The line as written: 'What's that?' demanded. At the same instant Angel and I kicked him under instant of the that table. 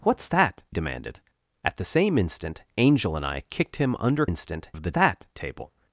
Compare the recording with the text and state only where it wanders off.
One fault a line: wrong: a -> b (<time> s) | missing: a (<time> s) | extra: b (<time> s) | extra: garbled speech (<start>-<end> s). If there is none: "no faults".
no faults